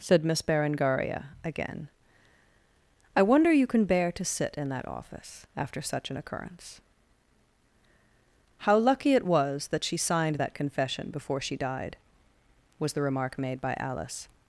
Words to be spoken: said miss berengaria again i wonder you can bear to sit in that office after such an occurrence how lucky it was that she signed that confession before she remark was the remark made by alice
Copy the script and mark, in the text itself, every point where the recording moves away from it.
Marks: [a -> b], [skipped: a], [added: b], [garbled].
said miss berengaria again i wonder you can bear to sit in that office after such an occurrence how lucky it was that she signed that confession before she [remark -> died] was the remark made by alice